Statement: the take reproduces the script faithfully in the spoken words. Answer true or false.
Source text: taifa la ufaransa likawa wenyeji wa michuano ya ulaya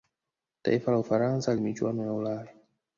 false